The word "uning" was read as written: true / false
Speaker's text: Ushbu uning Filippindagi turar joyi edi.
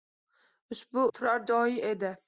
false